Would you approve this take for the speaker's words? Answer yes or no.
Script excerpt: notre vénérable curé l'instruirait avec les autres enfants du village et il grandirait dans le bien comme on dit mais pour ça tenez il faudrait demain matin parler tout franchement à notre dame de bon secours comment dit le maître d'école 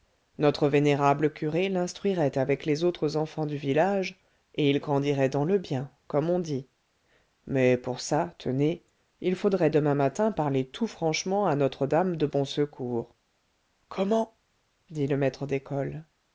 yes